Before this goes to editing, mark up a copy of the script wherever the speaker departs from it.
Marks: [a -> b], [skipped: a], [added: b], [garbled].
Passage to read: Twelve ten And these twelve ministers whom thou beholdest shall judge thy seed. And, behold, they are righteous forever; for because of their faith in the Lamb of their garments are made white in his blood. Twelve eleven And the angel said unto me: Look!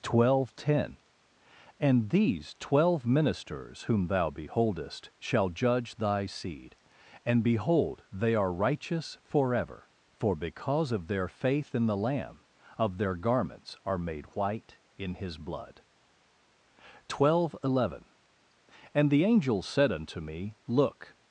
Twelve ten And these twelve ministers whom thou beholdest shall judge thy seed. And, behold, they are righteous forever; for because of their faith in the Lamb of their garments are made white in his blood. Twelve eleven And the angel said unto me: Look!